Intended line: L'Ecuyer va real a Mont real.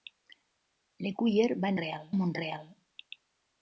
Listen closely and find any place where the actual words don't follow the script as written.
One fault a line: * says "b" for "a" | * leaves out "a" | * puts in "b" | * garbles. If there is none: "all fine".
all fine